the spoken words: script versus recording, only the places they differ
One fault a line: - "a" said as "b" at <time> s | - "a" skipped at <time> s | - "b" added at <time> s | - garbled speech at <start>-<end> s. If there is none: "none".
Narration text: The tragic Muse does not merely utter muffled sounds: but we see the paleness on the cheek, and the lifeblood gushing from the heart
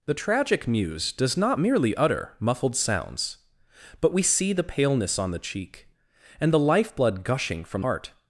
- "the" skipped at 7.8 s